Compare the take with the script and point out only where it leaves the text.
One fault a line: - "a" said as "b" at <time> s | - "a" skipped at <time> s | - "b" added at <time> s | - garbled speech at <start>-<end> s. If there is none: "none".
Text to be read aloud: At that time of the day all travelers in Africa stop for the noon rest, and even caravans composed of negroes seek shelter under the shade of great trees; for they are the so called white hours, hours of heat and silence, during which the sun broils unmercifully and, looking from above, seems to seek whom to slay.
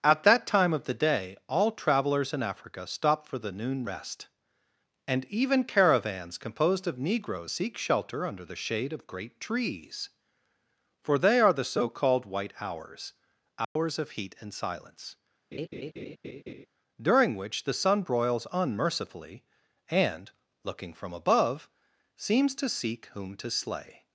none